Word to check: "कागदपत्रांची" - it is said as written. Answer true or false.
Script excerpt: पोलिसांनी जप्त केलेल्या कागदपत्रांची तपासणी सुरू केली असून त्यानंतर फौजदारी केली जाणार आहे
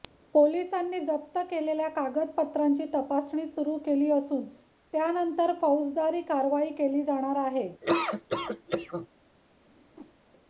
true